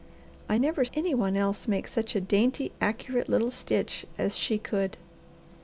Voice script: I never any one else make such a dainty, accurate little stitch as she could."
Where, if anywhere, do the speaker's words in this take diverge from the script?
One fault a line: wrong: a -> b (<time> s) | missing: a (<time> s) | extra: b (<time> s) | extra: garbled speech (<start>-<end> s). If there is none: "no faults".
no faults